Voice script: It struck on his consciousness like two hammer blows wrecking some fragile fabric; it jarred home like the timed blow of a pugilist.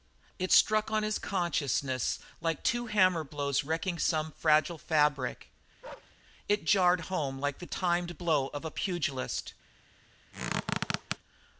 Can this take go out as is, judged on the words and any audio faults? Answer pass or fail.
fail